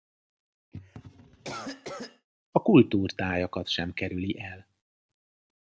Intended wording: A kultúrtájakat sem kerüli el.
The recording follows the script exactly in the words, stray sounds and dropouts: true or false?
false